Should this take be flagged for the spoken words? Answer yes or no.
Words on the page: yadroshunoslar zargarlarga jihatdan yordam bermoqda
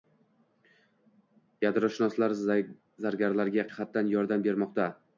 no